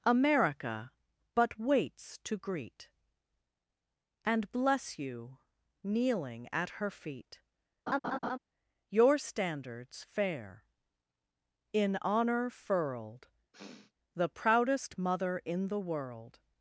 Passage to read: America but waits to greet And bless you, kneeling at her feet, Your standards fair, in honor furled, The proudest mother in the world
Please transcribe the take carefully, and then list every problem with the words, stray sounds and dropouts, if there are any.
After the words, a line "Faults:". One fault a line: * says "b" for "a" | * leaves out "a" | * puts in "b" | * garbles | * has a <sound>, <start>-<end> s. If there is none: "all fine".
America but waits to greet And bless you, kneeling at her feet, Your standards fair, in honor furled, The proudest mother in the world
Faults:
* has a laugh, 7.9-8.4 s
* has a sniff, 13.5-13.9 s